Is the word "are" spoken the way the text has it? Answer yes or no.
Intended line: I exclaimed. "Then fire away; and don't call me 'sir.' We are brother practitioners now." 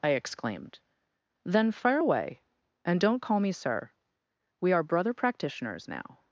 yes